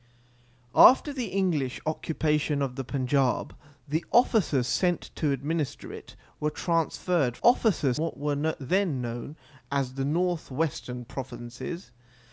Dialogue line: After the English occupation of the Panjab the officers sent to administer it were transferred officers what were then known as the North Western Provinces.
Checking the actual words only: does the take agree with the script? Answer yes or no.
yes